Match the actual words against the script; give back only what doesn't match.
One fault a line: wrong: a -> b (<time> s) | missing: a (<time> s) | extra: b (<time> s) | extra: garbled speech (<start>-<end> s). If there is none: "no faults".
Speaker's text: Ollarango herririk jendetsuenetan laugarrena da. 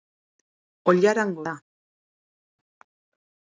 missing: herririk jendetsuenetan laugarrena (1.4 s)